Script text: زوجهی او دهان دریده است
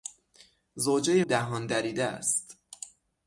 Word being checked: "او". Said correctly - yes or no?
no